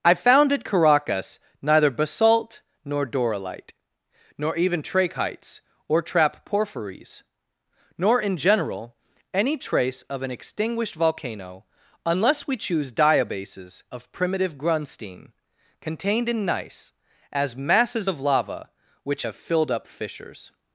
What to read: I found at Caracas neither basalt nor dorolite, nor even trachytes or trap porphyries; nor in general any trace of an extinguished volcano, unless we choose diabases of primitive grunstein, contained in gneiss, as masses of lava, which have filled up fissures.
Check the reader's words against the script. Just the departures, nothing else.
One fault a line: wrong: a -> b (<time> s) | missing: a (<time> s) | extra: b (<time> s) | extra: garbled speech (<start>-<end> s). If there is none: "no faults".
no faults